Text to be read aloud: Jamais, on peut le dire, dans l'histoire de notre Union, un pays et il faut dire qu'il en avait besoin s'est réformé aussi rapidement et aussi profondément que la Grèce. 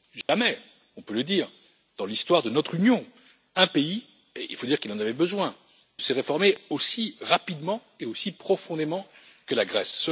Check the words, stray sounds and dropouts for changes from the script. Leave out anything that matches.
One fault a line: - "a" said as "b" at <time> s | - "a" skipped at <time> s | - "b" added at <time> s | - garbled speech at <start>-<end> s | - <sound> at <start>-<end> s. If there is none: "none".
- dropout at 0.2-0.3 s